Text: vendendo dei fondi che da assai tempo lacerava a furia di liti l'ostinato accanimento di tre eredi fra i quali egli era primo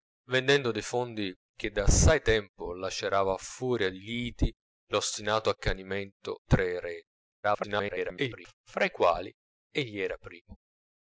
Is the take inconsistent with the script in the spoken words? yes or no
yes